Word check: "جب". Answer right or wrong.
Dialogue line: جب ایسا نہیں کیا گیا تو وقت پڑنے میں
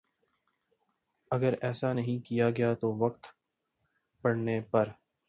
wrong